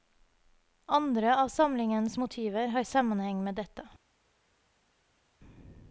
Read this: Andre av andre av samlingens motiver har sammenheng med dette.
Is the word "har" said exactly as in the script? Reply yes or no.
yes